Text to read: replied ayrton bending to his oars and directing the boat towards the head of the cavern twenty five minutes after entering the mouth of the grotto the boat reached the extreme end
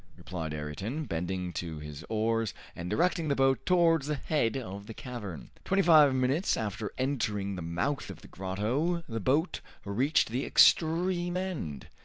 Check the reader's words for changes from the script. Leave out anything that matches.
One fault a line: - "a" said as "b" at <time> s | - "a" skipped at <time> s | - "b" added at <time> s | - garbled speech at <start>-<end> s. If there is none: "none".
none